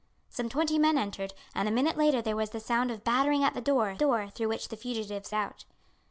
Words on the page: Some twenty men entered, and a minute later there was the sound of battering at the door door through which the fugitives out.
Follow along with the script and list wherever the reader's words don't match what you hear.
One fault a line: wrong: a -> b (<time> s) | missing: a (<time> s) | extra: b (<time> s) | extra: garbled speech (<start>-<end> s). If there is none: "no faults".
no faults